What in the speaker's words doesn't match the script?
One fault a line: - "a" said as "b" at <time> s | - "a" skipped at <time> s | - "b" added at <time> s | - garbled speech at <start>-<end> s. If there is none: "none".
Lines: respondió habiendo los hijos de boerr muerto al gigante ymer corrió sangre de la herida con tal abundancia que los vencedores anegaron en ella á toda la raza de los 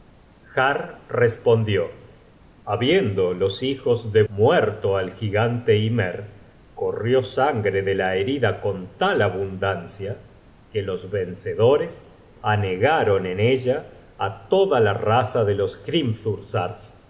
- "boerr" skipped at 4.2 s